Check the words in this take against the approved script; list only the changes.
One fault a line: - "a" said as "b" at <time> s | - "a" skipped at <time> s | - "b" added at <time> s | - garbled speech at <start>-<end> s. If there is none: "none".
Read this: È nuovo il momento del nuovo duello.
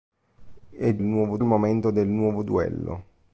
none